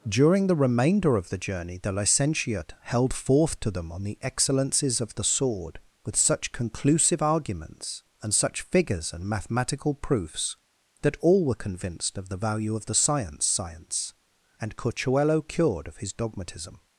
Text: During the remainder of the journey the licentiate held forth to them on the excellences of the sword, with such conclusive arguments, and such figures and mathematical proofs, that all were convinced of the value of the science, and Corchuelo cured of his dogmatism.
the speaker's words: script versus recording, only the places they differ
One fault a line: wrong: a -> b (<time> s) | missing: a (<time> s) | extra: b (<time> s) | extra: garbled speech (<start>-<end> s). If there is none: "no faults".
extra: science (13.4 s)